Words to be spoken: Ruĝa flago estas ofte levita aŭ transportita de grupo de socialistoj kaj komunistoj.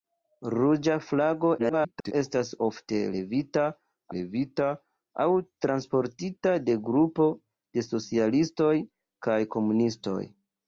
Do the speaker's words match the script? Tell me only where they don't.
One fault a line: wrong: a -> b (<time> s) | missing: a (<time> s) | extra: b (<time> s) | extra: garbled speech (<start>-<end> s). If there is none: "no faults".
extra: garbled speech (1.6-2.1 s)
extra: levita (4.1 s)